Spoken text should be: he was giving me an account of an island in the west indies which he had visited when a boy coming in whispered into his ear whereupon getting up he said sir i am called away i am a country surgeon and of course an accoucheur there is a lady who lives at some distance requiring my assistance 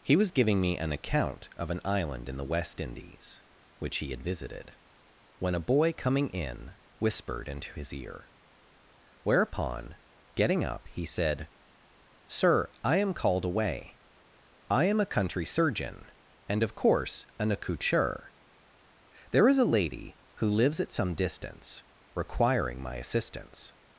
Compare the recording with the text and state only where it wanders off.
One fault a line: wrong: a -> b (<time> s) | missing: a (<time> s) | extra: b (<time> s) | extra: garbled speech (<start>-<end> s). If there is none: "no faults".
no faults